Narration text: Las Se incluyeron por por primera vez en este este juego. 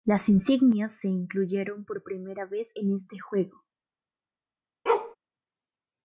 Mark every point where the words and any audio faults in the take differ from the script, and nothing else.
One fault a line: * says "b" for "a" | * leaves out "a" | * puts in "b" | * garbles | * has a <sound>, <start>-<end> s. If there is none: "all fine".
* puts in "Insignias"
* leaves out "por"
* leaves out "este"
* has a bark, 4.9-5.2 s